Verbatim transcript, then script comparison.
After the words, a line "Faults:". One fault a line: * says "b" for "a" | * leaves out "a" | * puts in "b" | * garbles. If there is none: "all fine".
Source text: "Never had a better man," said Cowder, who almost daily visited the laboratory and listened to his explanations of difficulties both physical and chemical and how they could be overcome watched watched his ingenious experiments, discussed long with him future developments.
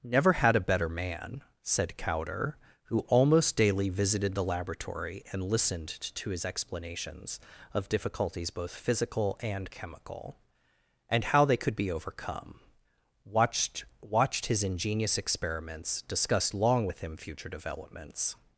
"Never had a better man," said Cowder, who almost daily visited the laboratory and listened to his explanations of difficulties both physical and chemical and how they could be overcome watched watched his ingenious experiments, discussed long with him future developments.
Faults:
all fine